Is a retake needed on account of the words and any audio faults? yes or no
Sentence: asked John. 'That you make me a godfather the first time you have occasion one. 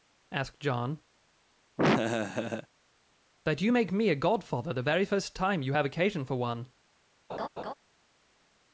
yes